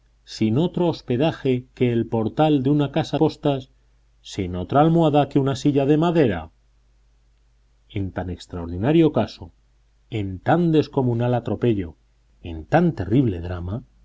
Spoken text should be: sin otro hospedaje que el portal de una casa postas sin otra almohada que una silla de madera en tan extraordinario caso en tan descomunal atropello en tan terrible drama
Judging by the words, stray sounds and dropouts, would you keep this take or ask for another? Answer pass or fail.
pass